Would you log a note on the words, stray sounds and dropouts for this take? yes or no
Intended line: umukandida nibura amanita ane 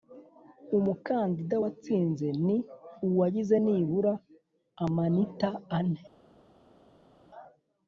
yes